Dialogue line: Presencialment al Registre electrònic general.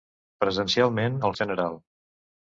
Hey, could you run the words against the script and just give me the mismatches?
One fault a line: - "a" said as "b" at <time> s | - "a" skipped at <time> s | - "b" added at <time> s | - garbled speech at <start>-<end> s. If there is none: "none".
- "Registre electrònic" skipped at 1.3 s